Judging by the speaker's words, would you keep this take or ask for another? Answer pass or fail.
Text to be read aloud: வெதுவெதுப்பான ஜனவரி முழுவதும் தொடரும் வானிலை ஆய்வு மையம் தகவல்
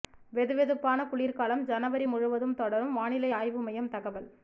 fail